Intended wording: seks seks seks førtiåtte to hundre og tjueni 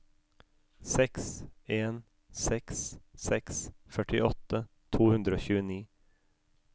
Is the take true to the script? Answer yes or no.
no